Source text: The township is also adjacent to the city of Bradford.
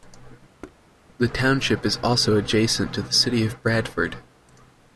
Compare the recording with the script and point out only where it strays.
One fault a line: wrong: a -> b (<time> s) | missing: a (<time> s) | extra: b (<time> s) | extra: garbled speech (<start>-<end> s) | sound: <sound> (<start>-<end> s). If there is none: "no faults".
sound: thud (0.6-0.8 s)